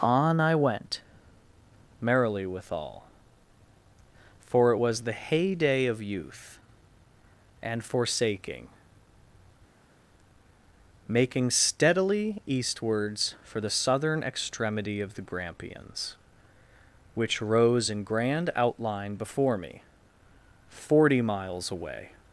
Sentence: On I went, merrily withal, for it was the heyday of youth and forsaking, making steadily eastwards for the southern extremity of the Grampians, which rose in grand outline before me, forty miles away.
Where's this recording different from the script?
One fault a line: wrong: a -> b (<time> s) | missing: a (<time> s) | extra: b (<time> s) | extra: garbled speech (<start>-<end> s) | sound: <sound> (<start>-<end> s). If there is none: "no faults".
no faults